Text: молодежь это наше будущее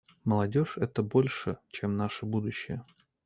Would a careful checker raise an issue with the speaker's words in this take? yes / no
yes